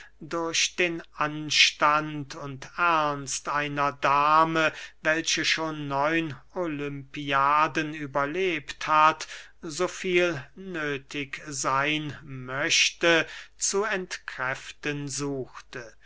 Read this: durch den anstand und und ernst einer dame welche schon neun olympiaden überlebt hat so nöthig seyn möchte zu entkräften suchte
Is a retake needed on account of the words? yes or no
yes